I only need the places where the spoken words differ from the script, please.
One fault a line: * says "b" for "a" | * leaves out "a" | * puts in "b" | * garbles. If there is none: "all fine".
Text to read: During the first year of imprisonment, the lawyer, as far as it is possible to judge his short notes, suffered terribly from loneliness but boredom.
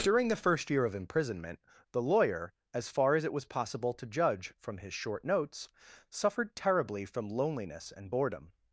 * says "was" for "is"
* puts in "from"
* says "and" for "but"